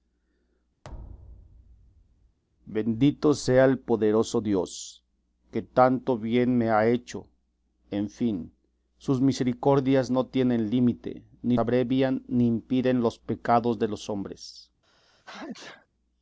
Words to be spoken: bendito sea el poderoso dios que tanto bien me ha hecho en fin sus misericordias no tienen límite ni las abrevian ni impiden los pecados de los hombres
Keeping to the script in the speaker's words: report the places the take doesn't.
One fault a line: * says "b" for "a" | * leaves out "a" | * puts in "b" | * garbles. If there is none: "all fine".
* leaves out "las"